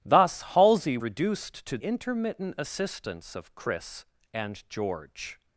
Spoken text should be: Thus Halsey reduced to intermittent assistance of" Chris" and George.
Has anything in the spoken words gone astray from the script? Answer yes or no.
no